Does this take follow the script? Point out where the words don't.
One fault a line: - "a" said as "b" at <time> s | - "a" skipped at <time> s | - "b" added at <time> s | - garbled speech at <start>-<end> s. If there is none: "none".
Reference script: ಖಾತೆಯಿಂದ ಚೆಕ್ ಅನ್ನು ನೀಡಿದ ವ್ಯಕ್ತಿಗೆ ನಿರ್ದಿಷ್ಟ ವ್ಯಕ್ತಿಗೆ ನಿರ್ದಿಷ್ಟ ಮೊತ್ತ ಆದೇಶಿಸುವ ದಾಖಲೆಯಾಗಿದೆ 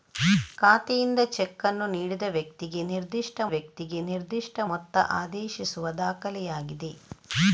none